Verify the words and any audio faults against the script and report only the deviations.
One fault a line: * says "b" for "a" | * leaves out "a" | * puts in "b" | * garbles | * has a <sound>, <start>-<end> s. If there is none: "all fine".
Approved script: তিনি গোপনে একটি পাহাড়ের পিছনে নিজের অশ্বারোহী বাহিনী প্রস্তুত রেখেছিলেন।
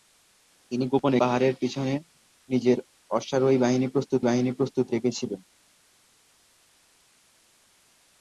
* leaves out "একটি"
* puts in "বাহিনী প্রস্তুত"